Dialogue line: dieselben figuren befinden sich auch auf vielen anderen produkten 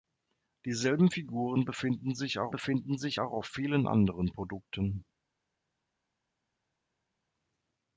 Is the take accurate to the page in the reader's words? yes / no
no